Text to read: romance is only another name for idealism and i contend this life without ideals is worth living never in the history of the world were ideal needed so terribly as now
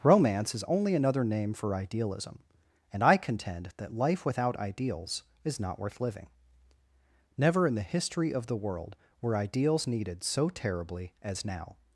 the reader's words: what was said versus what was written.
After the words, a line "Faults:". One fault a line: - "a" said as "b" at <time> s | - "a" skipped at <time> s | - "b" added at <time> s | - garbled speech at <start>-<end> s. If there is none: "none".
romance is only another name for idealism and i contend that life without ideals is not worth living never in the history of the world were ideals needed so terribly as now
Faults:
- "this" said as "that" at 3.8 s
- "not" added at 5.6 s
- "ideal" said as "ideals" at 9.3 s